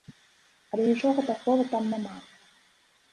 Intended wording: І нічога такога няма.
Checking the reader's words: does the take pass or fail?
fail